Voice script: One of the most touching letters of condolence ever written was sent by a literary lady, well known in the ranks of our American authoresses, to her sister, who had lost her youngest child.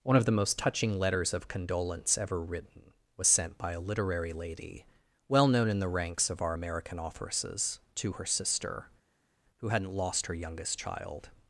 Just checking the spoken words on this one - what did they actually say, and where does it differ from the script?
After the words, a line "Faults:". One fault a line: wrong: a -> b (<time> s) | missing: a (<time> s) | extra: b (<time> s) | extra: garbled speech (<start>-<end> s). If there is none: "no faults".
One of the most touching letters of condolence ever written was sent by a literary lady, well known in the ranks of our American authoresses, to her sister, who hadn't lost her youngest child.
Faults:
wrong: had -> hadn't (9.7 s)